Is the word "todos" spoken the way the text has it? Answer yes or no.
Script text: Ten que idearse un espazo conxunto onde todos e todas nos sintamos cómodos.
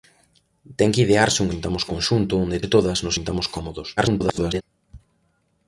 no